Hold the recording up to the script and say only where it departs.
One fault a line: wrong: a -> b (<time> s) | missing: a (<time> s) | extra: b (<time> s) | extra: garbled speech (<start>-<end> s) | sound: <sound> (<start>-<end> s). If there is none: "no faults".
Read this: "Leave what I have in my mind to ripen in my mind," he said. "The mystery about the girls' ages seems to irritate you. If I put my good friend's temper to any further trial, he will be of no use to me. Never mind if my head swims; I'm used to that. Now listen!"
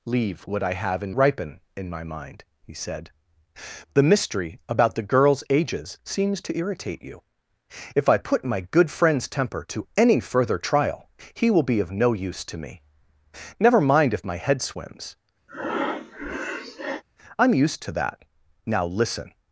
missing: my mind to (1.1 s)
sound: breath (15.5-17.0 s)